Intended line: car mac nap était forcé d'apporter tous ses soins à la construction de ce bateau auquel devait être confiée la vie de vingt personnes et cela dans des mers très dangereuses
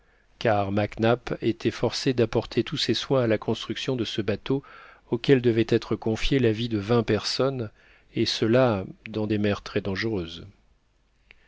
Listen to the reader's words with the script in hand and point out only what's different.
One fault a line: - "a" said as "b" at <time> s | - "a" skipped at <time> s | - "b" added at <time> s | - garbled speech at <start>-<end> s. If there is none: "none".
none